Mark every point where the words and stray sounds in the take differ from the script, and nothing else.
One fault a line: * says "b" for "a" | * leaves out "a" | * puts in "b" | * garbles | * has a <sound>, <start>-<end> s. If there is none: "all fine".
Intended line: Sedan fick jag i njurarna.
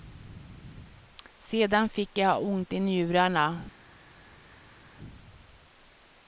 * puts in "ont"